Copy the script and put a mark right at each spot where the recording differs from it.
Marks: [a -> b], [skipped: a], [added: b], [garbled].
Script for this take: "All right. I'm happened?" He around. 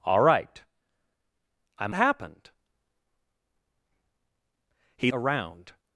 "All right. I'm happened?" He around.